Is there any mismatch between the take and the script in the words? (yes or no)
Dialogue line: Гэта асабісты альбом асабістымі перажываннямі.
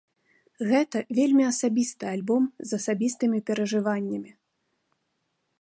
yes